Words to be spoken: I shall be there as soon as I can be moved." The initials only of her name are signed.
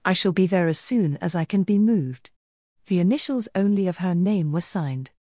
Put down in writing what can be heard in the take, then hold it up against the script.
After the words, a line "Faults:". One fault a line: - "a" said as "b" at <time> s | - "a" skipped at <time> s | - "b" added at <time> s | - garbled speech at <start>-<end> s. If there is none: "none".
I shall be there as soon as I can be moved." The initials only of her name were signed.
Faults:
- "are" said as "were" at 4.5 s